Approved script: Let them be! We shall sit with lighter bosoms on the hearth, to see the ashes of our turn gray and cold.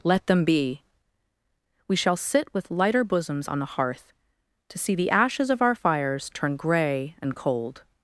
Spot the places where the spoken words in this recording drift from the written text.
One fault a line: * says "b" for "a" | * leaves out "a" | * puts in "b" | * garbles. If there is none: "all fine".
* puts in "fires"